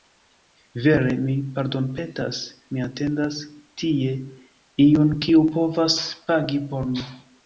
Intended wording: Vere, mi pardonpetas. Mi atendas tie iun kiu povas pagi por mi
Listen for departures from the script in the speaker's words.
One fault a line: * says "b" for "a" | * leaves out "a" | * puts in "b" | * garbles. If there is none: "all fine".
all fine